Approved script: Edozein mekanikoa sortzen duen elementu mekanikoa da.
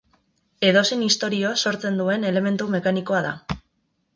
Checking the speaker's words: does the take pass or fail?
fail